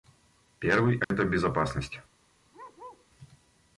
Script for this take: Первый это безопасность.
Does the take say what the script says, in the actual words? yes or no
yes